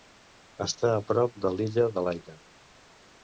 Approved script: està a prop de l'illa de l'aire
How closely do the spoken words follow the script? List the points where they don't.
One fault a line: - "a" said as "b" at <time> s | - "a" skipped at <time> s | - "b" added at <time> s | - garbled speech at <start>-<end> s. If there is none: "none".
none